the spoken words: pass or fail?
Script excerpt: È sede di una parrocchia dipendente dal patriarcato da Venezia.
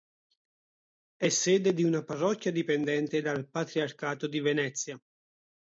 fail